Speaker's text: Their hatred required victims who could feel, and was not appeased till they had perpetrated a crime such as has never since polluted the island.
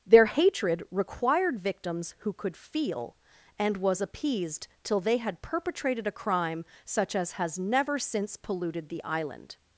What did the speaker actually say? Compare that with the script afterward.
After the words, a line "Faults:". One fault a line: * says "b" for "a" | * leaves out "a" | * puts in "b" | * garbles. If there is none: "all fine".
Their hatred required victims who could feel, and was appeased till they had perpetrated a crime such as has never since polluted the island.
Faults:
* leaves out "not"